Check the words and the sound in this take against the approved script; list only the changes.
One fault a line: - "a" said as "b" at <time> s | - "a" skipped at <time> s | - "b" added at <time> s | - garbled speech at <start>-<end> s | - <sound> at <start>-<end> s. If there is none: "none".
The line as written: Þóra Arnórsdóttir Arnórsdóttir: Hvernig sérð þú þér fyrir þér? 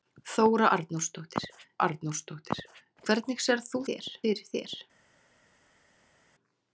none